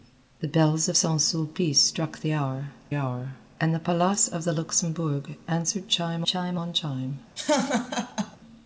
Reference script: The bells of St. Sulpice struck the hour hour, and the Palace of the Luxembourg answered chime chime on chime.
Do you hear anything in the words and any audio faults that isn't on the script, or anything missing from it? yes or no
yes